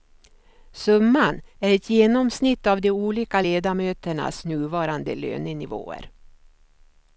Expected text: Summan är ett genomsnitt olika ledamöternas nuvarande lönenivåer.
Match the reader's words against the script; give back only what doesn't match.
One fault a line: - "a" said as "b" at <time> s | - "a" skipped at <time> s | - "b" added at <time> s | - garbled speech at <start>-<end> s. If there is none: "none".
- "av de" added at 2.7 s